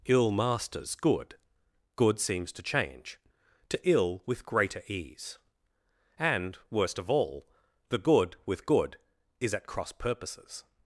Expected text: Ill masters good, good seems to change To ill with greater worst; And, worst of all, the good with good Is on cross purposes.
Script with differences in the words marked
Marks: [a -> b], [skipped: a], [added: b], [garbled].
Ill masters good, good seems to change To ill with greater [worst; -> ease] And, worst of all, the good with good Is [on -> at] cross purposes.